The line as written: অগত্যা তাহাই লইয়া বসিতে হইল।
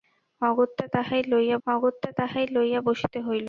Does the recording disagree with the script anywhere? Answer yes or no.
yes